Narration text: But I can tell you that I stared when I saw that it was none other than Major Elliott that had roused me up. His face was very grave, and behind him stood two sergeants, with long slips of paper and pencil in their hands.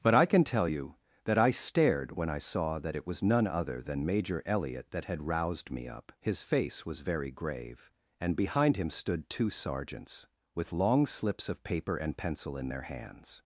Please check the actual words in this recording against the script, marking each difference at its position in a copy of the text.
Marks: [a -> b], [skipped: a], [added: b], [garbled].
But I can tell you that I stared when I saw that it was none other than Major Elliott that had roused me up. His face was very grave, and behind him stood two sergeants, with long slips of paper and pencil in their hands.